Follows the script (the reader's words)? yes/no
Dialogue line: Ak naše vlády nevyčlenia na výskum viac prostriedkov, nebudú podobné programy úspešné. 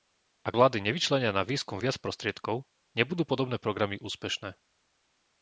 no